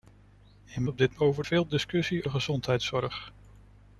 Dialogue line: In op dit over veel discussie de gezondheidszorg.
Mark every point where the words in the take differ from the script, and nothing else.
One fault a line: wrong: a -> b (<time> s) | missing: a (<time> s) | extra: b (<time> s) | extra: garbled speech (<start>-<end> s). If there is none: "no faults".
no faults